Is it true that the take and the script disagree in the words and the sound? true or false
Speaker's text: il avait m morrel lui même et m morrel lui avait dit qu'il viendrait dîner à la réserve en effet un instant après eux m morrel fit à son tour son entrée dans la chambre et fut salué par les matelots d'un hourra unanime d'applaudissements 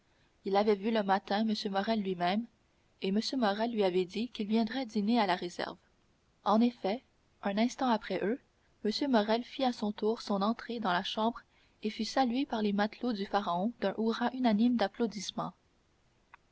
true